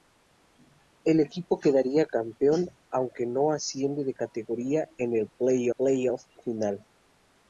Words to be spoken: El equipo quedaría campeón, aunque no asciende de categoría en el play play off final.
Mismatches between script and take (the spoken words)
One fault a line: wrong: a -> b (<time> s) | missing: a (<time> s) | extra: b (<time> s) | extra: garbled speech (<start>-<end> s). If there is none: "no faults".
no faults